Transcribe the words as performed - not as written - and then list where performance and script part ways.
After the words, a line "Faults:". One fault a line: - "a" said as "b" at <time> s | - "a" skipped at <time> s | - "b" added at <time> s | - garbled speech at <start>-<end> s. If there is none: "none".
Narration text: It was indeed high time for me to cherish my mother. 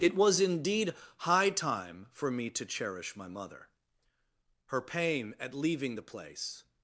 It was indeed high time for me to cherish my mother. Her pain at leaving the place
Faults:
- "Her pain at leaving the place" added at 4.7 s